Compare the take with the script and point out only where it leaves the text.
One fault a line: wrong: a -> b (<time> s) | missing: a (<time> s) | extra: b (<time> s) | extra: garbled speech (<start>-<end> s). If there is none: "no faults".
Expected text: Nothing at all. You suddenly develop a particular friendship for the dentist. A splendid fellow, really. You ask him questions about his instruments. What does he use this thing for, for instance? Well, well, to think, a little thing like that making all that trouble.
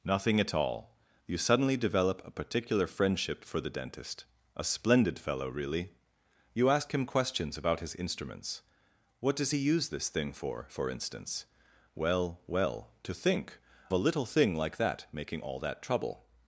no faults